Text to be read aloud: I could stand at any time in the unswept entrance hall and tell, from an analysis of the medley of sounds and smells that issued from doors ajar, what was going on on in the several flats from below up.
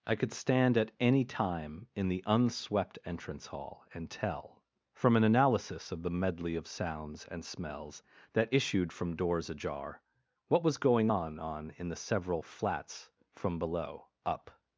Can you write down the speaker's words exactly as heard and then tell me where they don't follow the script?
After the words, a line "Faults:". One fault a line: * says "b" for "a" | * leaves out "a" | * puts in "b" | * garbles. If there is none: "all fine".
I could stand at any time in the unswept entrance hall and tell, from an analysis of the medley of sounds and smells that issued from doors ajar, what was going on on in the several flats from below up.
Faults:
all fine